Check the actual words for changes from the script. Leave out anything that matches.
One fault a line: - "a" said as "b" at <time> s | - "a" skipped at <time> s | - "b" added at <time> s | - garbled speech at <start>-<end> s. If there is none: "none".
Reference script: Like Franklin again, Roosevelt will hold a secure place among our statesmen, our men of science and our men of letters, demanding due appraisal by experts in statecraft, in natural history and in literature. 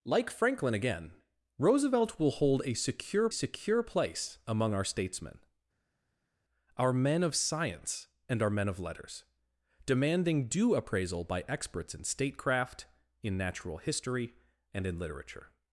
- "secure" added at 3.3 s